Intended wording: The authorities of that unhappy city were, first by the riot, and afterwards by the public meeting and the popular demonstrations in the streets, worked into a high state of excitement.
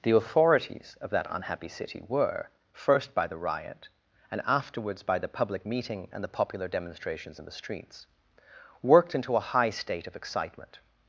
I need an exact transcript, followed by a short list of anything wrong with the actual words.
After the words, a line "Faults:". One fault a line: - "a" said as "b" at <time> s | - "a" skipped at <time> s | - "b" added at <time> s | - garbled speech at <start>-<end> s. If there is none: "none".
The authorities of that unhappy city were, first by the riot, and afterwards by the public meeting and the popular demonstrations in the streets, worked into a high state of excitement.
Faults:
none